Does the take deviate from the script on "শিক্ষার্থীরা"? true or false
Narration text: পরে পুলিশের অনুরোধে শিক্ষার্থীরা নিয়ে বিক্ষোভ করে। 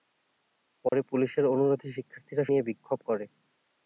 false